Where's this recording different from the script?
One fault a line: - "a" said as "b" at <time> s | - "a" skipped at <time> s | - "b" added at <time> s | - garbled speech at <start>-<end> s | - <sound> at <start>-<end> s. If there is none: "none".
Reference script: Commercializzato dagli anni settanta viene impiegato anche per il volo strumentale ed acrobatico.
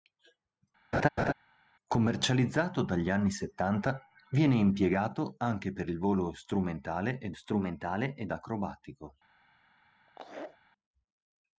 - laugh at 0.9-1.3 s
- "strumentale ed" added at 7.3 s
- laugh at 10.1-10.6 s